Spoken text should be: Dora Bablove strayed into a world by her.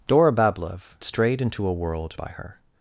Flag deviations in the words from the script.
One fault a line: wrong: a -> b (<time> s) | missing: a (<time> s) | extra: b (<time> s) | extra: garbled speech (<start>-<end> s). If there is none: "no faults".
no faults